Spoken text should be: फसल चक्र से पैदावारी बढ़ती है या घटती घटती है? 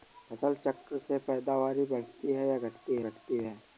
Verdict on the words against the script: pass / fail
pass